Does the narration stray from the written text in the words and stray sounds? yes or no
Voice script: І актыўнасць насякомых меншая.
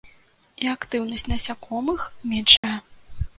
yes